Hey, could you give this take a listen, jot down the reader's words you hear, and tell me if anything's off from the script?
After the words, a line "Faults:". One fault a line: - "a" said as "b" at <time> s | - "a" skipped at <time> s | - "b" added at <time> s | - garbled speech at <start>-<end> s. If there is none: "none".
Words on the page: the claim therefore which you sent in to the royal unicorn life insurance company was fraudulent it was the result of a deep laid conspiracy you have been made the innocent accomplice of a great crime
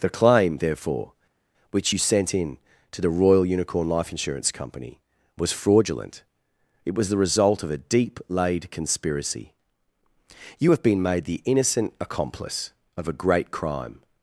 the claim therefore which you sent in to the royal unicorn life insurance company was fraudulent it was the result of a deep laid conspiracy you have been made the innocent accomplice of a great crime
Faults:
none